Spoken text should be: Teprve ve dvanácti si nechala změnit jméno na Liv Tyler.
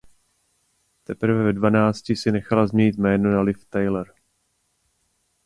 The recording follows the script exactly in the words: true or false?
true